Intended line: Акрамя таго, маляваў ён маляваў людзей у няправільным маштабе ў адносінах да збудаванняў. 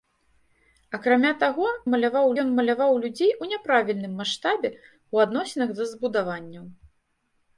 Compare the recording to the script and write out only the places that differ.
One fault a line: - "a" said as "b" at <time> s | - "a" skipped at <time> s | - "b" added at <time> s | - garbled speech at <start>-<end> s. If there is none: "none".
none